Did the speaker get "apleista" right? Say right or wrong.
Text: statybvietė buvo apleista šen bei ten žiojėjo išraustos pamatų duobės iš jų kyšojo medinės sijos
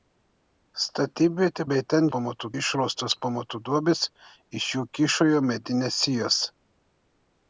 wrong